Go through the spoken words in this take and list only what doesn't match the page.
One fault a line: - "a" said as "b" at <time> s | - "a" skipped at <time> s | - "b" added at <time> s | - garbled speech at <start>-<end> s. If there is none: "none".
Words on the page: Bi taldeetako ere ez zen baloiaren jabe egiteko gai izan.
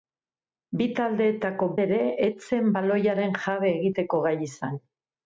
none